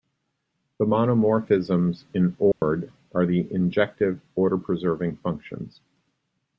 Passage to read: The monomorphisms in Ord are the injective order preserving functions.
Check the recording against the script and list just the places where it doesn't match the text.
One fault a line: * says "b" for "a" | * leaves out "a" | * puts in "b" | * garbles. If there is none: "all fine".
all fine